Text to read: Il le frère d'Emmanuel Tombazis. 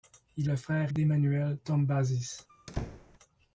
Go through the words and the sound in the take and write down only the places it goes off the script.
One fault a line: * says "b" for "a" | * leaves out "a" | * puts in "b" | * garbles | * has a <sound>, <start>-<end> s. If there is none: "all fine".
* has a squeak, 2.5-3.2 s